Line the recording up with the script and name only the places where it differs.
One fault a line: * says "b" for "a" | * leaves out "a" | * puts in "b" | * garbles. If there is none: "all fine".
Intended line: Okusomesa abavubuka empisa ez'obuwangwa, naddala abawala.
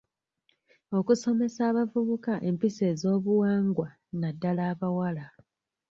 all fine